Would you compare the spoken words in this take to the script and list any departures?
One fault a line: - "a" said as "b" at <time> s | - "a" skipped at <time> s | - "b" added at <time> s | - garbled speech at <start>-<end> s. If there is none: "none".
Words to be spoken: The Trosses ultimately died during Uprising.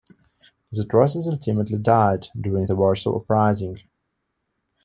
- "the Warsaw" added at 2.6 s